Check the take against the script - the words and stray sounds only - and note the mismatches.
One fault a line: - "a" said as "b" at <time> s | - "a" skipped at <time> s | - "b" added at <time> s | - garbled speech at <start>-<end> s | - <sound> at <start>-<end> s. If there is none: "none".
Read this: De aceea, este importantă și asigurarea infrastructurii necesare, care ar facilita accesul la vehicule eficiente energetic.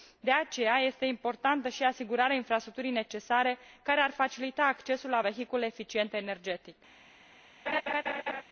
- laugh at 7.7-8.4 s